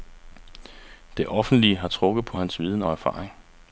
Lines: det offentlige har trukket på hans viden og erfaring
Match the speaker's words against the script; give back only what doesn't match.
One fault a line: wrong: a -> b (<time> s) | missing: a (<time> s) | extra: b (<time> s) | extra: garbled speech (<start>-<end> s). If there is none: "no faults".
no faults